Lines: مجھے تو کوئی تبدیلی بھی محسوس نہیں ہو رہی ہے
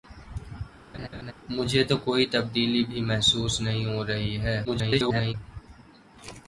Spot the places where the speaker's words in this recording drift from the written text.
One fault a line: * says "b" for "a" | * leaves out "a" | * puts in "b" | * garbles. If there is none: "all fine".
* garbles